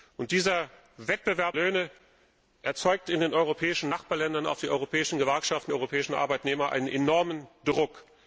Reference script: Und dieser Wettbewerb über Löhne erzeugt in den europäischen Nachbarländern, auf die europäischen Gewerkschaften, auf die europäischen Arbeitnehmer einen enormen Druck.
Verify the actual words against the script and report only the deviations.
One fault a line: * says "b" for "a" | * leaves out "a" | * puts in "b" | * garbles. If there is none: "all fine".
* leaves out "über"
* leaves out "auf die"